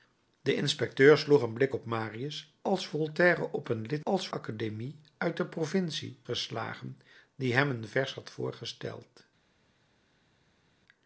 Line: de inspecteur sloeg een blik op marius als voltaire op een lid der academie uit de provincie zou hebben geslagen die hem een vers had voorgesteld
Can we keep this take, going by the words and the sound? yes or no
no